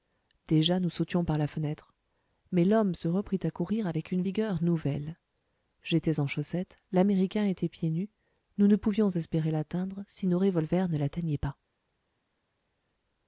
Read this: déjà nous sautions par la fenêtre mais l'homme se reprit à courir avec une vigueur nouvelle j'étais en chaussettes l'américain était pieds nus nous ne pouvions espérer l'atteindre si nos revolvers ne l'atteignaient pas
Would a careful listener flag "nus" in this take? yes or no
no